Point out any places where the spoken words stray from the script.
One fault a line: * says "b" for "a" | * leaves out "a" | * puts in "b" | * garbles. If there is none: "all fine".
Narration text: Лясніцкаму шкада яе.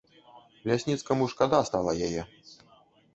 * puts in "стала"